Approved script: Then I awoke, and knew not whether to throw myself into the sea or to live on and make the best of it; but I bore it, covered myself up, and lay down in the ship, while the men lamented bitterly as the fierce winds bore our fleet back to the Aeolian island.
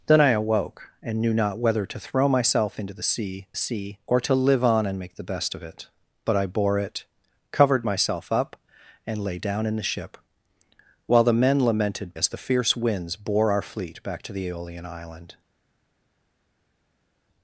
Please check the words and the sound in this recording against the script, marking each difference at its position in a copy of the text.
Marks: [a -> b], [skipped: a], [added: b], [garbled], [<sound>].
Then I awoke, and knew not whether to throw myself into the sea [added: sea] or to live on and make the best of it; but I bore it, covered myself up, and lay down in the ship, while the men lamented [skipped: bitterly] as the fierce winds bore our fleet back to the Aeolian island.